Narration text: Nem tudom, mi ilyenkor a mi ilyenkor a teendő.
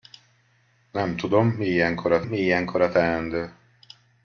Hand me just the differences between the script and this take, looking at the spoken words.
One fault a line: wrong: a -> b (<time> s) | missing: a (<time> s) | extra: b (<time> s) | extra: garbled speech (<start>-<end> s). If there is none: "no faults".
no faults